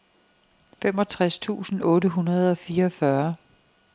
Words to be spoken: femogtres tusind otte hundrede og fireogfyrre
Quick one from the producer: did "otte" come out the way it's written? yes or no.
yes